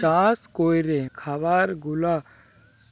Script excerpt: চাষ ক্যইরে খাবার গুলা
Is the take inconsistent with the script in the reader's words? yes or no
no